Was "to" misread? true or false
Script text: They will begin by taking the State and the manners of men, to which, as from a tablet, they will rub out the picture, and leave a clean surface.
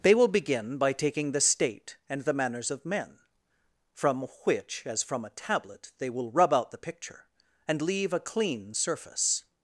true